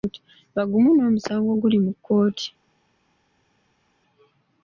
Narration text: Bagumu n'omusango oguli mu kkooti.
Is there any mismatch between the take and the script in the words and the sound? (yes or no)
no